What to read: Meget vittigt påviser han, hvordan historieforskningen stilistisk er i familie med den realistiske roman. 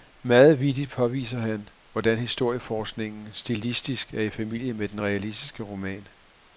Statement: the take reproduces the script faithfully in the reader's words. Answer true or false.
true